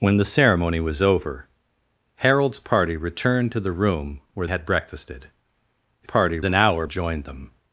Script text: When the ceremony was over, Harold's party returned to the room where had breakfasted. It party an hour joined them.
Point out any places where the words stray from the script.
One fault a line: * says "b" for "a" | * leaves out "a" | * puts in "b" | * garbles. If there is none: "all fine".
all fine